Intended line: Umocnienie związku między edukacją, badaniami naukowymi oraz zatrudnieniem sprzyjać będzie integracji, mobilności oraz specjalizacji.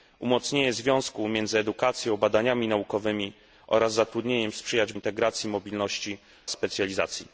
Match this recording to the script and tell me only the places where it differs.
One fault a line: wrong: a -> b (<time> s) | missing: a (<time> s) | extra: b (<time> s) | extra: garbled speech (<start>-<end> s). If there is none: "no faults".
missing: będzie (4.9 s)
missing: oraz (6.2 s)